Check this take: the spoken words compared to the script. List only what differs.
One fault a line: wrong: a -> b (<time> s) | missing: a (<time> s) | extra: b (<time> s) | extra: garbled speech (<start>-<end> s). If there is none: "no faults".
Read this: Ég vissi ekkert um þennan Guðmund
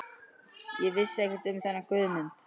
no faults